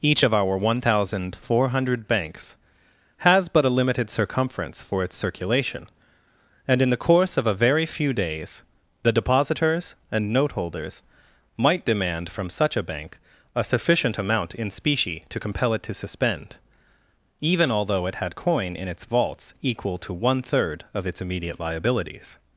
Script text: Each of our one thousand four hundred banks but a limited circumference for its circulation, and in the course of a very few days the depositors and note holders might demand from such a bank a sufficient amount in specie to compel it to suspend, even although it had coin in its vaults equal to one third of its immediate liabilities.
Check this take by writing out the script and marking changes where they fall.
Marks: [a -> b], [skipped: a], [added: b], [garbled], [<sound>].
Each of our one thousand four hundred banks [added: has] but a limited circumference for its circulation, and in the course of a very few days the depositors and note holders might demand from such a bank a sufficient amount in specie to compel it to suspend, even although it had coin in its vaults equal to one third of its immediate liabilities.